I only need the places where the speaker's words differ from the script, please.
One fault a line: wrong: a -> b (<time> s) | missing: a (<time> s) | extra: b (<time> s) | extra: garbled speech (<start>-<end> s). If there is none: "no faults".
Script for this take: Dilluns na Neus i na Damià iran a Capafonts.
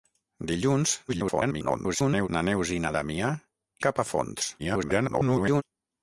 extra: garbled speech (1.1-2.3 s)
missing: iran (3.3 s)
extra: garbled speech (4.6-5.6 s)